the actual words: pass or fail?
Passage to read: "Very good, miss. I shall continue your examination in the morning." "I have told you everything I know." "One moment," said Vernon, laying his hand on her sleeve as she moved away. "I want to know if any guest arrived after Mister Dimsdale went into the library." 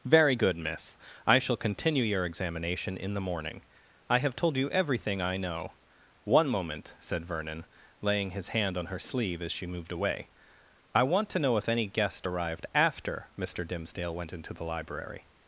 pass